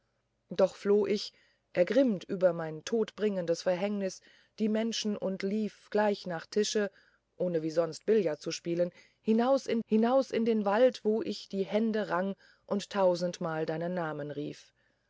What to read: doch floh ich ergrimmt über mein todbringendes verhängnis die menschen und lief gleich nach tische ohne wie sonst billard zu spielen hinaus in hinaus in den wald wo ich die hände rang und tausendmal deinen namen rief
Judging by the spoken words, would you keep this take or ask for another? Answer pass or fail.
pass